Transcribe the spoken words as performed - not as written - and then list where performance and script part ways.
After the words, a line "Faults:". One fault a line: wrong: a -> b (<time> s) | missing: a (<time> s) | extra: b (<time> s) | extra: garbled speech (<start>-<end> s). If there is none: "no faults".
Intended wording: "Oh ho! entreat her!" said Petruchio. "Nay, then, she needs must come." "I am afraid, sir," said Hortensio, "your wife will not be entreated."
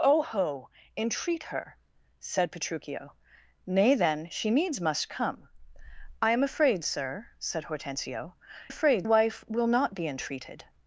"Oh ho! entreat her!" said Petruchio. "Nay, then, she needs must come." "I am afraid, sir," said Hortensio, "afraid wife will not be entreated."
Faults:
wrong: your -> afraid (8.7 s)